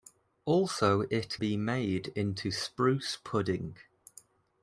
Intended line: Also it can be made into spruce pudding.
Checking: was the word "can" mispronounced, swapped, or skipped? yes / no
yes